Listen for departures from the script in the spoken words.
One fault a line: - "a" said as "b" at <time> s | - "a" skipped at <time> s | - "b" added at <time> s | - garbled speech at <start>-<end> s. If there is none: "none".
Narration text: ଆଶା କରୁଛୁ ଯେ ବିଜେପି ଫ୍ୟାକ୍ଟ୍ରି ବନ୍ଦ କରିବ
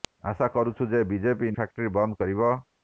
none